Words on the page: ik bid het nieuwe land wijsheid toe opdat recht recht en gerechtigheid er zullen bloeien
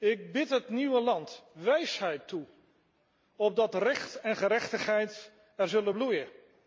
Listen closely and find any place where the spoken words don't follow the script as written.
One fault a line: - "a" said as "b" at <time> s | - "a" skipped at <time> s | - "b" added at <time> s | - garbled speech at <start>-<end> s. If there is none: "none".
- "recht" skipped at 4.2 s